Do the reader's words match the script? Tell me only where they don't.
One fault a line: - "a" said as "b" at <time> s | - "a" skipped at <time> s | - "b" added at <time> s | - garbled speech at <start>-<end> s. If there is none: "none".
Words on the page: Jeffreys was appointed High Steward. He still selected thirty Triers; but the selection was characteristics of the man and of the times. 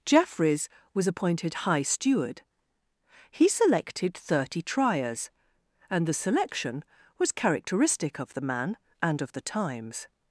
- "still" skipped at 3.5 s
- "but" said as "and" at 5.9 s
- "characteristics" said as "characteristic" at 7.3 s